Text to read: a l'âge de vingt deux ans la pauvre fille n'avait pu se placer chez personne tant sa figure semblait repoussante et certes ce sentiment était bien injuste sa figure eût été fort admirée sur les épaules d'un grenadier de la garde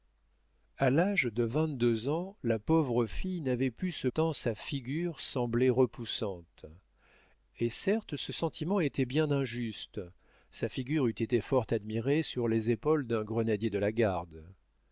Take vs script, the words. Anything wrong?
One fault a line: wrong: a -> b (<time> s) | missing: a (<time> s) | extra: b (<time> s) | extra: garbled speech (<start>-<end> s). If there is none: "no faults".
missing: placer chez personne (4.1 s)